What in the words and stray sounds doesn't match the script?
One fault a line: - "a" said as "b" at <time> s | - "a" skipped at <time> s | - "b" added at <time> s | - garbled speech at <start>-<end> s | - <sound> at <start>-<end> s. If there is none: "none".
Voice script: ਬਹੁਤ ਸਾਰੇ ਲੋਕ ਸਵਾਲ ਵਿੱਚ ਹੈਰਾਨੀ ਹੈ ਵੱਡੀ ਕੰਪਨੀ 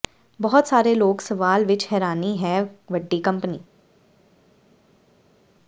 none